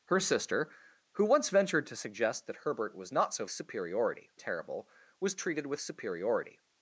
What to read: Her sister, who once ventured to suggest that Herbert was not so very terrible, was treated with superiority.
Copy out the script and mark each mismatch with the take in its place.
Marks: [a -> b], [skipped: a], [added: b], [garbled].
Her sister, who once ventured to suggest that Herbert was not so [very -> superiority] terrible, was treated with superiority.